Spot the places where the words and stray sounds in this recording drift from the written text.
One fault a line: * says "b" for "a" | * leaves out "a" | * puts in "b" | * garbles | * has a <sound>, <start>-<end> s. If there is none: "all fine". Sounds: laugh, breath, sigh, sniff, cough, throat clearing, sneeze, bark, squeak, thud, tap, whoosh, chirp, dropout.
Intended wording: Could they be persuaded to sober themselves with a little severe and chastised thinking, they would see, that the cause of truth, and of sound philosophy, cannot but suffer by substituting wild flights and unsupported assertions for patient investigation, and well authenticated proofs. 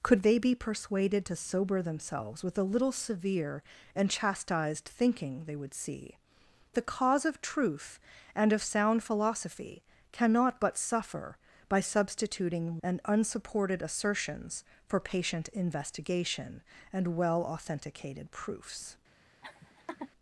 * leaves out "that"
* leaves out "wild flights"
* has a laugh, 19.4-20.1 s